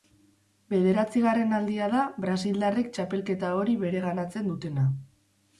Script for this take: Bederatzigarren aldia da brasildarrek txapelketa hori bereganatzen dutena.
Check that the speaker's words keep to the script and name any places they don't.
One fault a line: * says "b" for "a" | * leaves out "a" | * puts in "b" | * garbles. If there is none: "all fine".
all fine